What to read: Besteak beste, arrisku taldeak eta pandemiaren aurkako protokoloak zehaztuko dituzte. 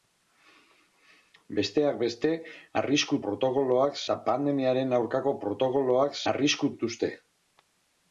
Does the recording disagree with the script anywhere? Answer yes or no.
yes